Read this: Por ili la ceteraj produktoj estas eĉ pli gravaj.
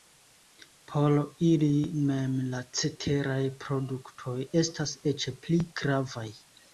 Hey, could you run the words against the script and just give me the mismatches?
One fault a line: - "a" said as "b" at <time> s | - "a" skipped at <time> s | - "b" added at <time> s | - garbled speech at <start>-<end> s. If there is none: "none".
- "mem" added at 2.1 s